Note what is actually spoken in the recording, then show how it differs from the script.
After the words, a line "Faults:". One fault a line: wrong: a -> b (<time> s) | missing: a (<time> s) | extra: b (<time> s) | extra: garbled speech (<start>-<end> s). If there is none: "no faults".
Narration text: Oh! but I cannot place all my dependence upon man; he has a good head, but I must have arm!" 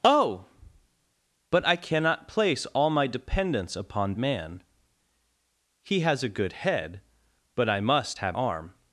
Oh! but I cannot place all my dependence upon man; he has a good head, but I must have arm!"
Faults:
no faults